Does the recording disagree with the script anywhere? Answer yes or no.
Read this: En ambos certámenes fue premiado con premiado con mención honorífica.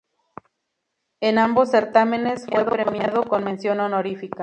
yes